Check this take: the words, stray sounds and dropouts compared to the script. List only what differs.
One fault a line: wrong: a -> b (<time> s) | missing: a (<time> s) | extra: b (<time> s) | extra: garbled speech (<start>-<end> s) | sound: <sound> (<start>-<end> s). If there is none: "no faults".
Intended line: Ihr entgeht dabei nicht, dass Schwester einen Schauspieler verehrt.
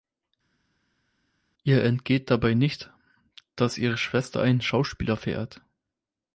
extra: ihre (3.8 s)